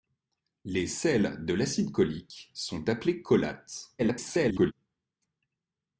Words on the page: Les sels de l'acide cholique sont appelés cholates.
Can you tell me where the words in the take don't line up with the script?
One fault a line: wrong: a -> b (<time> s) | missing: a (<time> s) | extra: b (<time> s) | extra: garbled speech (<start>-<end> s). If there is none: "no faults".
extra: garbled speech (4.0-4.7 s)